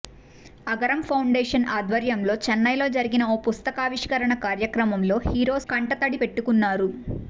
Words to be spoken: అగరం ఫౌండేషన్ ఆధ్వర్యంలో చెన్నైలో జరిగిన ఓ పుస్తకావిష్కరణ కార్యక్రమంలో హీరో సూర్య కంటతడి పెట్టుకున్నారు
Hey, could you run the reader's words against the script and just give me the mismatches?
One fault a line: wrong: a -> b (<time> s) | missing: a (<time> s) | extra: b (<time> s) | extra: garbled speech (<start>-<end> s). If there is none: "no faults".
missing: సూర్య (5.6 s)